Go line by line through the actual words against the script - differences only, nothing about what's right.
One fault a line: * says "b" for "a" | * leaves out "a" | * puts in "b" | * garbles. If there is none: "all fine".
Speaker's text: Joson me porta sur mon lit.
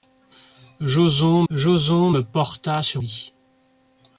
* puts in "joson"
* leaves out "mon"